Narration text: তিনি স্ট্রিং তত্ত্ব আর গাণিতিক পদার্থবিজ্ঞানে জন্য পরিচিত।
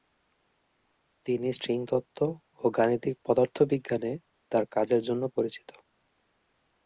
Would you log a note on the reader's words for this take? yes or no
yes